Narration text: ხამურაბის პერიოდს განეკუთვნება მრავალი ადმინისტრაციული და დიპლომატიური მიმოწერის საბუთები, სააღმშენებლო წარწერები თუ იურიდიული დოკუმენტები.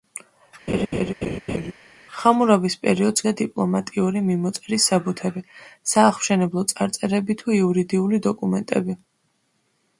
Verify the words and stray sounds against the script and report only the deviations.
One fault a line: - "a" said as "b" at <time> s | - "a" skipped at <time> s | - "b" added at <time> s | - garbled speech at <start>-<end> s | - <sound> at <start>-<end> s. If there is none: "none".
- laugh at 0.7-1.7 s
- "განეკუთვნება მრავალი ადმინისტრაციული" skipped at 3.2 s